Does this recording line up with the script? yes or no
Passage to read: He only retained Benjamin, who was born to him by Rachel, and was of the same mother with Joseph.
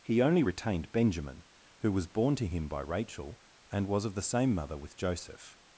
yes